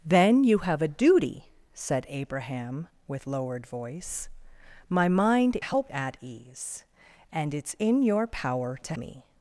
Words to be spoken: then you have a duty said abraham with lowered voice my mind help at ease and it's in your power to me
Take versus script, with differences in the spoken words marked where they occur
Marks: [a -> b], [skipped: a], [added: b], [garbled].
then you have a duty said abraham with lowered voice my mind help at ease and it's in your power to me